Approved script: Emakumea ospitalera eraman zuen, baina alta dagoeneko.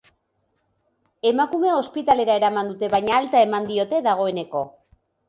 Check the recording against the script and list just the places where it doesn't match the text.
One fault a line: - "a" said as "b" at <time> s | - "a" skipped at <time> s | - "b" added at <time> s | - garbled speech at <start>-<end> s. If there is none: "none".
- "zuen" said as "dute" at 2.7 s
- "eman diote" added at 3.5 s